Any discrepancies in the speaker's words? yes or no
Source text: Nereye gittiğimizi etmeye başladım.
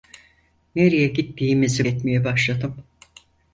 no